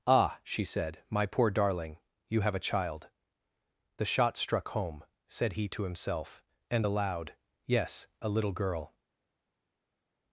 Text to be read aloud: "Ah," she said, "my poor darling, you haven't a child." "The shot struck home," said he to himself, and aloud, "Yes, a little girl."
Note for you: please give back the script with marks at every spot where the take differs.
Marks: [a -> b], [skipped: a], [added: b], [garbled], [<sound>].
"Ah," she said, "my poor darling, you [haven't -> have] a child." "The shot struck home," said he to himself, and aloud, "Yes, a little girl."